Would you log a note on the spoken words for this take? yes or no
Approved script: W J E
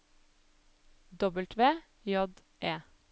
no